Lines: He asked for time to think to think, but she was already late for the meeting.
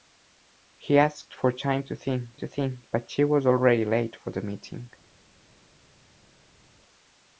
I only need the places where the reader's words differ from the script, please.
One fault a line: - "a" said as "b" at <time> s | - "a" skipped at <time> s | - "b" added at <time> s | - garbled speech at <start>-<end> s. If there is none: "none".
none